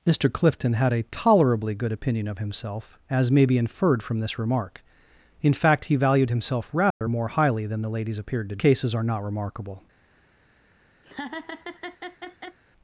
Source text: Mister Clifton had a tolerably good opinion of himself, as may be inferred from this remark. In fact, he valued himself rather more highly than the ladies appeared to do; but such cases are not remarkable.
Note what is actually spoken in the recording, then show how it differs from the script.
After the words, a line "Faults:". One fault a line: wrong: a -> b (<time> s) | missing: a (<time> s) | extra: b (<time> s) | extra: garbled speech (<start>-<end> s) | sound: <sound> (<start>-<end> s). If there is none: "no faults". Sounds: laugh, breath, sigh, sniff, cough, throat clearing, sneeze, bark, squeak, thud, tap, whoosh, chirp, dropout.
Mister Clifton had a tolerably good opinion of himself, as may be inferred from this remark. In fact, he valued himself rather more highly than the ladies appeared to cases are not remarkable.
Faults:
sound: dropout (6.9-7.0 s)
missing: do but such (8.6 s)
sound: laugh (11.0-12.6 s)